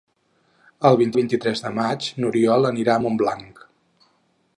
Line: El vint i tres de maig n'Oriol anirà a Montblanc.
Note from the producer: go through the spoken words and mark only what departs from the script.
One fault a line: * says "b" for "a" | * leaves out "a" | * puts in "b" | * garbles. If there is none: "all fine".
* puts in "vint"